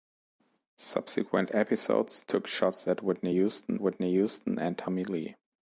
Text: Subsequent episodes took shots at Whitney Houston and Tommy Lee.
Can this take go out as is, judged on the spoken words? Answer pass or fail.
fail